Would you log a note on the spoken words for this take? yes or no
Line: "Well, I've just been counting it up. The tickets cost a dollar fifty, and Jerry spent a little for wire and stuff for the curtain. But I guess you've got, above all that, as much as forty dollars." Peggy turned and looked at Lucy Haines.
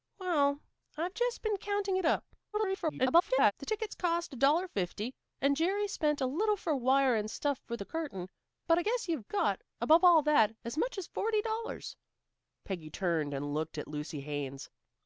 yes